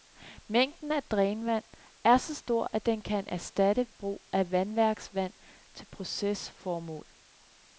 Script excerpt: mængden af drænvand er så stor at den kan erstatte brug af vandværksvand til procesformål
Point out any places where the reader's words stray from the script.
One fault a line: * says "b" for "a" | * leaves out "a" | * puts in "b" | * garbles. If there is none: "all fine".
all fine